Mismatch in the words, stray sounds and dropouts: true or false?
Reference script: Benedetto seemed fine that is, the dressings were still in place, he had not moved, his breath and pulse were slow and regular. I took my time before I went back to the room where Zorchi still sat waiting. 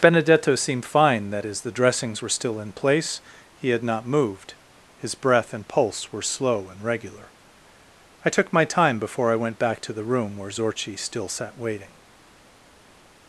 false